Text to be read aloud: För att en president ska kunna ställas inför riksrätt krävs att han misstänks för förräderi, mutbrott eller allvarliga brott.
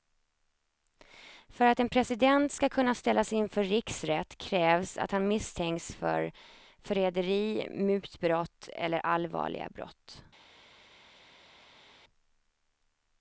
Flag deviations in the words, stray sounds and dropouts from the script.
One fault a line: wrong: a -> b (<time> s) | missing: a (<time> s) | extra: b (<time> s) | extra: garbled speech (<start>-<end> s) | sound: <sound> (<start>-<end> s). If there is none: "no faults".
no faults